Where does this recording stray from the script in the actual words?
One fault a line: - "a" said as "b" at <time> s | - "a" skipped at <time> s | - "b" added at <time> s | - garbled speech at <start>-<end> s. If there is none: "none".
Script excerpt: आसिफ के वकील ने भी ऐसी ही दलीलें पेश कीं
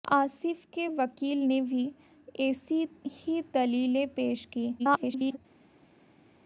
- garbled speech at 4.8-5.4 s